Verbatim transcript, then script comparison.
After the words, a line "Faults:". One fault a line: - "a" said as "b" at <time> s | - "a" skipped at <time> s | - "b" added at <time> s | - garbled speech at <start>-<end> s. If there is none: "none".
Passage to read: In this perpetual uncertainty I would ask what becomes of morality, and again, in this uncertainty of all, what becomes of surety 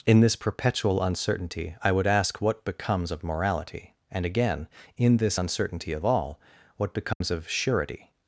In this perpetual uncertainty I would ask what becomes of morality, and again, in this uncertainty of all, what becomes of surety
Faults:
none